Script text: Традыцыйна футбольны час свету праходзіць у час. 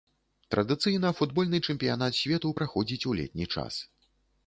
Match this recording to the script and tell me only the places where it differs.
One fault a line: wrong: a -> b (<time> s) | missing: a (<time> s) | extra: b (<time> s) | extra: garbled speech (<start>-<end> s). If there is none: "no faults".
wrong: час -> чэмпіянат (1.7 s)
extra: летні (3.2 s)